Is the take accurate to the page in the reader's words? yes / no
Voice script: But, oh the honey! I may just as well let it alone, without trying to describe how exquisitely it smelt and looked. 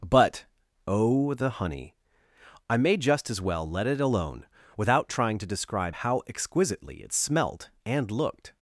yes